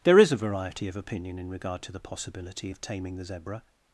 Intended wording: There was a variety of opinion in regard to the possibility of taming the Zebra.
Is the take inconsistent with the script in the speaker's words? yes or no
yes